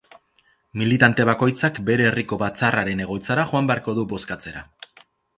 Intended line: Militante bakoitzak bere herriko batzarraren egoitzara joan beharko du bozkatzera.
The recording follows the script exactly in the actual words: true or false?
true